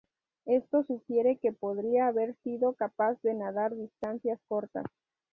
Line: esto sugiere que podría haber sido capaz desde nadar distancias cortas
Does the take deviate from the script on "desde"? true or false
true